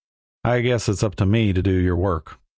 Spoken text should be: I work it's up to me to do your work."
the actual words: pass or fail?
fail